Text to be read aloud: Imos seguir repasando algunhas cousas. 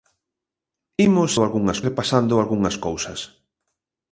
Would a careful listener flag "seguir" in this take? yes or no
yes